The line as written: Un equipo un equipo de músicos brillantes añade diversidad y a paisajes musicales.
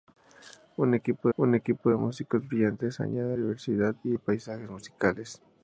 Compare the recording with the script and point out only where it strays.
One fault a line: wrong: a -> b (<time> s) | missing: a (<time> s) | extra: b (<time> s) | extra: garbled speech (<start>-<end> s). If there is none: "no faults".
no faults